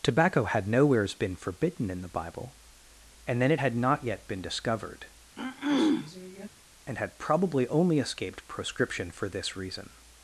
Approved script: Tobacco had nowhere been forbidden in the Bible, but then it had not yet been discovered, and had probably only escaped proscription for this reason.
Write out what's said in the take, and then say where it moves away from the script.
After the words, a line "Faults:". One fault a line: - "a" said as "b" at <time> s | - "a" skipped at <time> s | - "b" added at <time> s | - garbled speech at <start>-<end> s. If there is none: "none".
Tobacco had nowheres been forbidden in the Bible, and then it had not yet been discovered, and had probably only escaped proscription for this reason.
Faults:
- "nowhere" said as "nowheres" at 0.7 s
- "but" said as "and" at 3.3 s